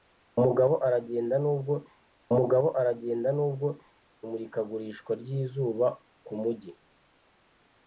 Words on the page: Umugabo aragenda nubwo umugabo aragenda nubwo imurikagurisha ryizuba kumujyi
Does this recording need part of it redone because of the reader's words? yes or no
no